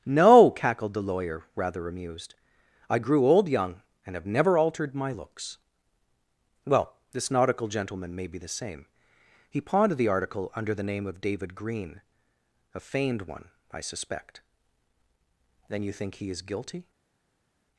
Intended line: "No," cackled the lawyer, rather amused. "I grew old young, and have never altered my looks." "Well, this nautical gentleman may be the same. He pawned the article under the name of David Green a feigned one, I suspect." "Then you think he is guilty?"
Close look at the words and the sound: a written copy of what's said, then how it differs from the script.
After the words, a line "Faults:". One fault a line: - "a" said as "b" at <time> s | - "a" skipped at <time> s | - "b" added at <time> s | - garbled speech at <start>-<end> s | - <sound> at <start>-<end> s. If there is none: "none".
"No," cackled the lawyer, rather amused. "I grew old young, and have never altered my looks." "Well, this nautical gentleman may be the same. He pawned the article under the name of David Green a feigned one, I suspect." "Then you think he is guilty?"
Faults:
none